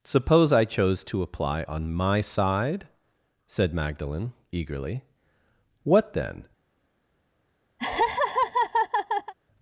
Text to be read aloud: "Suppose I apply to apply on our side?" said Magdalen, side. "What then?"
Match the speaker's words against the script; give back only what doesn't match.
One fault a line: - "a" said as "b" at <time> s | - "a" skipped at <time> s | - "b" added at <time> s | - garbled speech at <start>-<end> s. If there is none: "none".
- "apply" said as "chose" at 0.7 s
- "our" said as "my" at 1.9 s
- "side" said as "eagerly" at 4.5 s